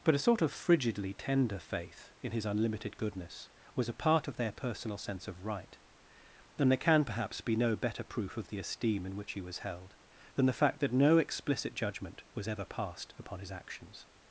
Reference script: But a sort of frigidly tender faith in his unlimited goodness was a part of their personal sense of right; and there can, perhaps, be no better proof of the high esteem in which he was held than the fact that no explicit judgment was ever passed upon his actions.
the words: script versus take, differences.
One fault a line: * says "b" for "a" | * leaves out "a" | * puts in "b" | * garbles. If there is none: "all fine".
* leaves out "high"